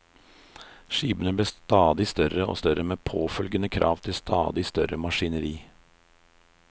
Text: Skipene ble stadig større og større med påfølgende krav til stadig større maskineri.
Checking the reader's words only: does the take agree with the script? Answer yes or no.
yes